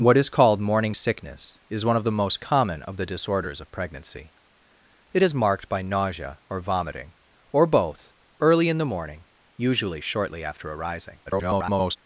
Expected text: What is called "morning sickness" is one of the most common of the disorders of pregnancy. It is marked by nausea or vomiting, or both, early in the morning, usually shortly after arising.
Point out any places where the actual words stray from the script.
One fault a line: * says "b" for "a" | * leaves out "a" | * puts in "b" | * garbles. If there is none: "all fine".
* garbles